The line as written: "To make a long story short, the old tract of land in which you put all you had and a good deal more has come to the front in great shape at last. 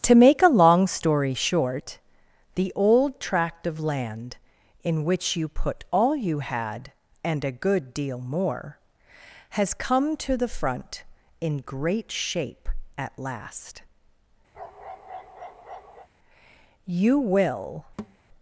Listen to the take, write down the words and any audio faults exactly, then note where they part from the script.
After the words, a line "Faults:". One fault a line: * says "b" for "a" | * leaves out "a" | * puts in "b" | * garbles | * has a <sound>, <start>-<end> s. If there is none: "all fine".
"To make a long story short, the old tract of land in which you put all you had and a good deal more has come to the front in great shape at last. You will
Faults:
* has a bark, 14.5-16.1 s
* puts in "You will"
* has a thud, 18.0-18.2 s